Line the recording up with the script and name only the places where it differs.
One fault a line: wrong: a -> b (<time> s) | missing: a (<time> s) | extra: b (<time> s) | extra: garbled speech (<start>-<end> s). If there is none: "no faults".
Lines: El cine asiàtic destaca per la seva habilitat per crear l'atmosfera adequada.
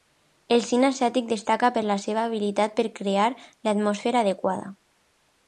no faults